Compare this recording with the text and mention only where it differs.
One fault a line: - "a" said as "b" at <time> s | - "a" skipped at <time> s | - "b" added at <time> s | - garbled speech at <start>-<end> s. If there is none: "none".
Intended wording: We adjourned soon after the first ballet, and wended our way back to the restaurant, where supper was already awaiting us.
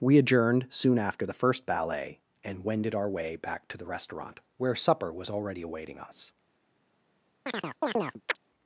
none